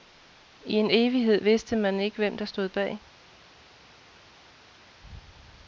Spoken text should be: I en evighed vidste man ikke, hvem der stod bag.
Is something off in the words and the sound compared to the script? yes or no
no